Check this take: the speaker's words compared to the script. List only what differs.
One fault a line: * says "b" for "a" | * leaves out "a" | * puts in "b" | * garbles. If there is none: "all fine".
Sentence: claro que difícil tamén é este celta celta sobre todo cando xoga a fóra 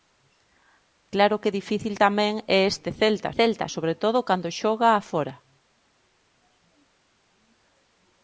all fine